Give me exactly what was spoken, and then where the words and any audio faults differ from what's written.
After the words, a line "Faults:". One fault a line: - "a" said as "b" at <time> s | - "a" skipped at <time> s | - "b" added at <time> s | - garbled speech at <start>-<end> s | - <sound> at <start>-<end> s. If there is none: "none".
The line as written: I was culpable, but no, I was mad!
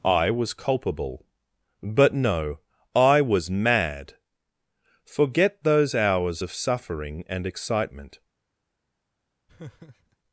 I was culpable, but no, I was mad! Forget those hours of suffering and excitement
Faults:
- "Forget those hours of suffering and excitement" added at 5.0 s
- laugh at 9.5-10.2 s